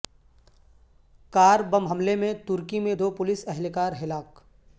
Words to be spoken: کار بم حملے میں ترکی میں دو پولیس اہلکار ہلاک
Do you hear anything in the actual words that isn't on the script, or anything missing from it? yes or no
no